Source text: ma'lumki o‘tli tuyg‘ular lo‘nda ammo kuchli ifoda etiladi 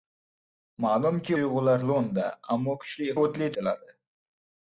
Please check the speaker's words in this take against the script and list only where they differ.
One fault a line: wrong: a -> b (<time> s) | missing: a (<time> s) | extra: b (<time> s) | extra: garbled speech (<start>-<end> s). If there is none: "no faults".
missing: o‘tli (1.4 s)
wrong: ifoda -> o‘tli (3.2 s)